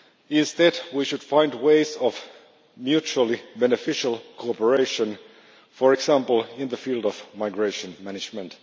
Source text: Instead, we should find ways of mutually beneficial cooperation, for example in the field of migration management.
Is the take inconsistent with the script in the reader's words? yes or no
no